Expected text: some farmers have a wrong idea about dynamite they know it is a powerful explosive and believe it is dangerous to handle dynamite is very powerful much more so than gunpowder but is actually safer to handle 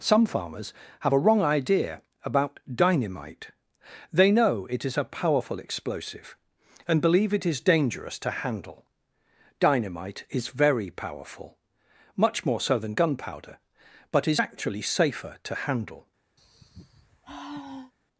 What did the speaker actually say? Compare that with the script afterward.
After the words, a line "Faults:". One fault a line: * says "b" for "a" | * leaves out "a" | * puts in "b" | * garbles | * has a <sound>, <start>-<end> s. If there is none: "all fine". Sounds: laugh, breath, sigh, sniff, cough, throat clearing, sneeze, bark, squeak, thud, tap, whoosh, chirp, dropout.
some farmers have a wrong idea about dynamite they know it is a powerful explosive and believe it is dangerous to handle dynamite is very powerful much more so than gunpowder but is actually safer to handle
Faults:
* has a sigh, 16.4-17.9 s